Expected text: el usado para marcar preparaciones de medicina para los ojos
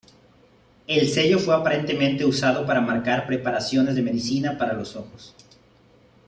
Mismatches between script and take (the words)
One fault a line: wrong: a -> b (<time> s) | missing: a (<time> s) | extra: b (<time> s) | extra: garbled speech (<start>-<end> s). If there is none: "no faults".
extra: sello fue aparentemente (1.1 s)